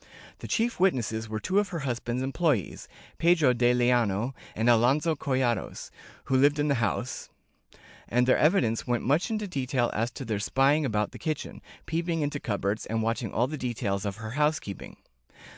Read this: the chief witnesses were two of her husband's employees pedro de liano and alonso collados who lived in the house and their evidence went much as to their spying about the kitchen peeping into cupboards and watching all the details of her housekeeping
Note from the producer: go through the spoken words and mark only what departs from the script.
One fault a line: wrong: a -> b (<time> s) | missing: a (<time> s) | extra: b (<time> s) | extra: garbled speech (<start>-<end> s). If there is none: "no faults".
extra: into detail (9.3 s)